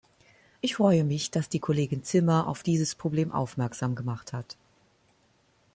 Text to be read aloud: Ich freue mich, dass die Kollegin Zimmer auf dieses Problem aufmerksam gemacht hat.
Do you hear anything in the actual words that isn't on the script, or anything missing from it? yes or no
no